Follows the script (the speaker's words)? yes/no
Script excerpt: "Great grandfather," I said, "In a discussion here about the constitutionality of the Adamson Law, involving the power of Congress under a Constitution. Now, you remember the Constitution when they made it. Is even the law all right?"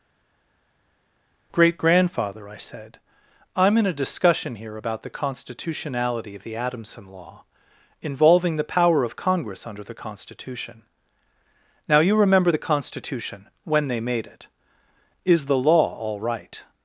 no